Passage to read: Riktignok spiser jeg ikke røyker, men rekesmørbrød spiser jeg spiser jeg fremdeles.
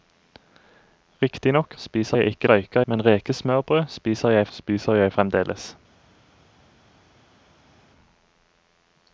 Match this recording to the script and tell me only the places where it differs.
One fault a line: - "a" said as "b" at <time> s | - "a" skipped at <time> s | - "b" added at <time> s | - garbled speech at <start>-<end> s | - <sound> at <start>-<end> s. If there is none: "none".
none